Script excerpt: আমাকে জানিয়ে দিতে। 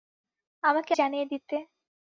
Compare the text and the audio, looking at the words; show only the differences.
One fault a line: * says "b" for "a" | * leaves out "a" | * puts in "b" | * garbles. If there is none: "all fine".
all fine